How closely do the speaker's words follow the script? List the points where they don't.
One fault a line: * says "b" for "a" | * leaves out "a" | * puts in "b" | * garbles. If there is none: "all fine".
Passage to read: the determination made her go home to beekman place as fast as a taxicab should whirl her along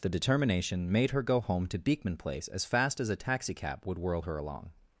* says "would" for "should"